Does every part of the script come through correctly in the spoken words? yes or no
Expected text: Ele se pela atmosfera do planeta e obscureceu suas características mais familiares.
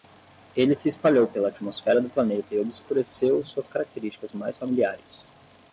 no